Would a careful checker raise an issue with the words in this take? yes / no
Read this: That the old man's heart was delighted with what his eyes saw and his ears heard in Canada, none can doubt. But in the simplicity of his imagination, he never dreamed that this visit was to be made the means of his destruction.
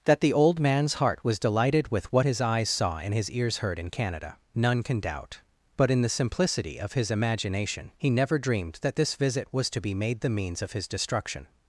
no